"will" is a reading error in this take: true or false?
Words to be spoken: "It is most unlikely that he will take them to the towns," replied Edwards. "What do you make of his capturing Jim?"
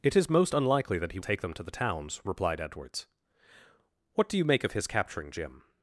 true